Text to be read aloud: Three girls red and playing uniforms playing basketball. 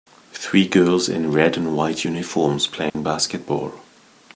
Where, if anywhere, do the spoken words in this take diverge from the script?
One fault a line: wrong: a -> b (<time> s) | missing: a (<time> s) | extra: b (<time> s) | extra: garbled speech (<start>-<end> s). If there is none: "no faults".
extra: in (1.1 s)
wrong: playing -> white (1.8 s)